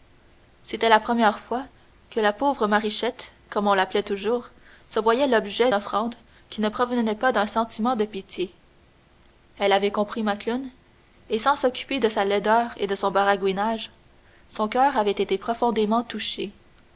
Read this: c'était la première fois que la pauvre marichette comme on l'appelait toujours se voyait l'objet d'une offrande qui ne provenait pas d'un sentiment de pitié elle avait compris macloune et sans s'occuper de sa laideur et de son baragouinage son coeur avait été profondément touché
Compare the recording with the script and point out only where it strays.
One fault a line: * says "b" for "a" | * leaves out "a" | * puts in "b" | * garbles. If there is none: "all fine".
* leaves out "d'une"